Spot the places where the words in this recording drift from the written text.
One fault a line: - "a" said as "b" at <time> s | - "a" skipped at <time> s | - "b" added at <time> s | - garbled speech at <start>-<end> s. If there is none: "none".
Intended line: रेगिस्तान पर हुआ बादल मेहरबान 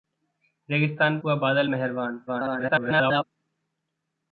- "पर" skipped at 1.2 s
- garbled speech at 2.3-3.2 s